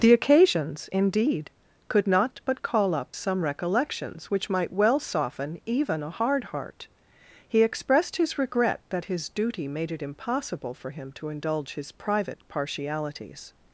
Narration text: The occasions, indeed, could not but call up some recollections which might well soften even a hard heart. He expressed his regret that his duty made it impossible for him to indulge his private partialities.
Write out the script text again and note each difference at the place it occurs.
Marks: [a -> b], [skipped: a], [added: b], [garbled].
The occasions, indeed, could not but call up some recollections which might well soften even a hard heart. He expressed his regret that his duty made it impossible for him to indulge his private partialities.